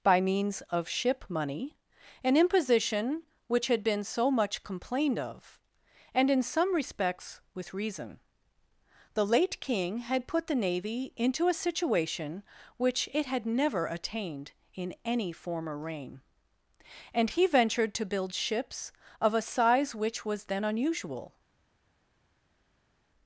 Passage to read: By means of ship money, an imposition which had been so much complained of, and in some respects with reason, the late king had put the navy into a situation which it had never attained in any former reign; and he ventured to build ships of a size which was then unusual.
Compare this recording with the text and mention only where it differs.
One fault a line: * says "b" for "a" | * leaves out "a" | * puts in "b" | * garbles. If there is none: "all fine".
all fine